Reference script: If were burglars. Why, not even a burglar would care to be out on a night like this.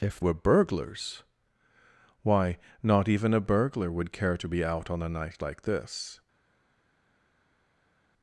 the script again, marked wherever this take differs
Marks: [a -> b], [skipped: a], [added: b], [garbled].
If were burglars. Why, not even a burglar would care to be out on a night like this.